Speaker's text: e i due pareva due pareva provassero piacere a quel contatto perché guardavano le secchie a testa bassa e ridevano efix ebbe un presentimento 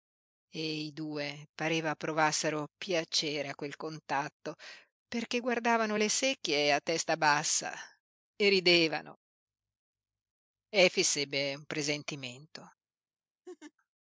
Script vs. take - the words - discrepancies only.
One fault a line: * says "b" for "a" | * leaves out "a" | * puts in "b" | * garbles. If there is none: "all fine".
* leaves out "due pareva"